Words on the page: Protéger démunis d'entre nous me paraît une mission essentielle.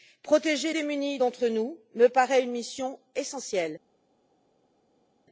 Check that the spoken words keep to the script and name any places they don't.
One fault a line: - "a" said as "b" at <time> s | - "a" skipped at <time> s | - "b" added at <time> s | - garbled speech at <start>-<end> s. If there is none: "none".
none